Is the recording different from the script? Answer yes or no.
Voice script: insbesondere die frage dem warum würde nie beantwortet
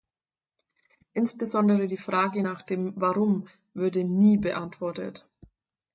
yes